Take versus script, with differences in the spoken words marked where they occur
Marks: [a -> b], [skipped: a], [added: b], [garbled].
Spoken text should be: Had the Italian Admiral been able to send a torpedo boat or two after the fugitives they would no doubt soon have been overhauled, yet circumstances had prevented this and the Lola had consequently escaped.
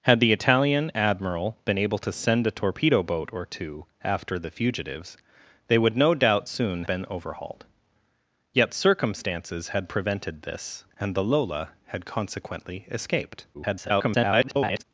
Had the Italian Admiral been able to send a torpedo boat or two after the fugitives they would no doubt soon [skipped: have] been overhauled, yet circumstances had prevented this and the Lola had consequently escaped. [garbled]